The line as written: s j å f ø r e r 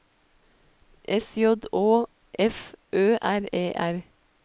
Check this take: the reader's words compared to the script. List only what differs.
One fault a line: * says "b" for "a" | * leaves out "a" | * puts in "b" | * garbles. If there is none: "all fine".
all fine